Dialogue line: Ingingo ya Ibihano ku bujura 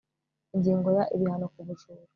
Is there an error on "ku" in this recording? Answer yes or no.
no